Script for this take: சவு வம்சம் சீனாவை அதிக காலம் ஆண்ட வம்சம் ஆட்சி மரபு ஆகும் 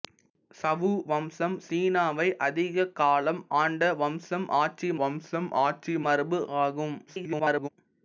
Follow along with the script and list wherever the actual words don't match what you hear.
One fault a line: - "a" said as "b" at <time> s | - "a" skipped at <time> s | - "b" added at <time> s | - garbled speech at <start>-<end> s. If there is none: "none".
- "வம்சம் ஆட்சி" added at 5.0 s
- garbled speech at 7.1-7.7 s